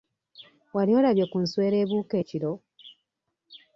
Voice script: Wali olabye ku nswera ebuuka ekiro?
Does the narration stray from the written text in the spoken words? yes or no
no